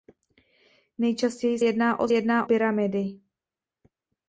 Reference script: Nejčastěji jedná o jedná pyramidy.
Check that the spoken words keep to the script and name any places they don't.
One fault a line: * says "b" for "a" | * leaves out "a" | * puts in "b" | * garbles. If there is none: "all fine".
all fine